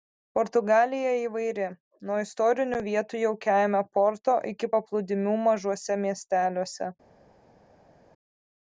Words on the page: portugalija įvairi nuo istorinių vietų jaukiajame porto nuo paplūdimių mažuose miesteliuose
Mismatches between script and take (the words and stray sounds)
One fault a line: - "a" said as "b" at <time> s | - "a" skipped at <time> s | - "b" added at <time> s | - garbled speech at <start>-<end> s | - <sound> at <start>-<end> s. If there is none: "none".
- "nuo" said as "iki" at 4.5 s